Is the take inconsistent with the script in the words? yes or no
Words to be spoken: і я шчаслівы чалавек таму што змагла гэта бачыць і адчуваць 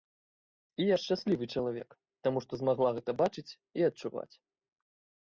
no